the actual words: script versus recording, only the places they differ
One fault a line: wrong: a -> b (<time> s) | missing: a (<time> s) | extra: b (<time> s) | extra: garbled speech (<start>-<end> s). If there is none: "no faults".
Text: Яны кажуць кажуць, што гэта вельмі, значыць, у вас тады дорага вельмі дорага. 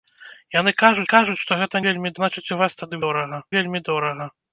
no faults